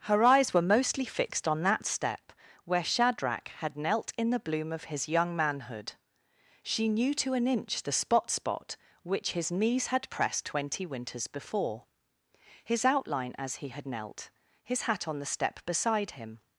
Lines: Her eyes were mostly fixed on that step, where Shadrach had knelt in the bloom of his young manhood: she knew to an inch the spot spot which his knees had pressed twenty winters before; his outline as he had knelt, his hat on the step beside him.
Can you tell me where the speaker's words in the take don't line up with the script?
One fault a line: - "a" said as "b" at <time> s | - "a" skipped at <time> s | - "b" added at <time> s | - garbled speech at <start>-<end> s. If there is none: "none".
none